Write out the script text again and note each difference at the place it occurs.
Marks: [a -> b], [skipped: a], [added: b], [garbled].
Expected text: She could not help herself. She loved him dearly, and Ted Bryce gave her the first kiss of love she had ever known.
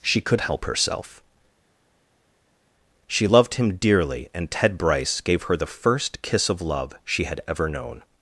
She could [skipped: not] help herself. She loved him dearly, and Ted Bryce gave her the first kiss of love she had ever known.